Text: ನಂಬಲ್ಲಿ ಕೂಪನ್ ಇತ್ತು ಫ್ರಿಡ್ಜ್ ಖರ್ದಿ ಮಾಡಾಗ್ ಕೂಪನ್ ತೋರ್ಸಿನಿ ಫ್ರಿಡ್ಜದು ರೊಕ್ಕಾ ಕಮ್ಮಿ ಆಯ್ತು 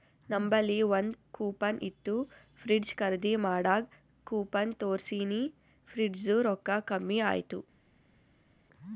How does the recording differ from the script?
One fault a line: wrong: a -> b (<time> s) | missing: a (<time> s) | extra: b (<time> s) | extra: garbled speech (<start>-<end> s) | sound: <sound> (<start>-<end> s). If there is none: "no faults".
extra: ಒಂದ್ (0.9 s)